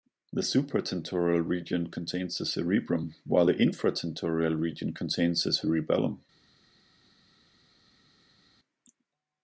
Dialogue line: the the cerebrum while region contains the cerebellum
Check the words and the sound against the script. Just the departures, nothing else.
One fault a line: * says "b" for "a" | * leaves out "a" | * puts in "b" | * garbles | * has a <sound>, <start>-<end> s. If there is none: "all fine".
* puts in "supratentorial region contains"
* puts in "the infratentorial"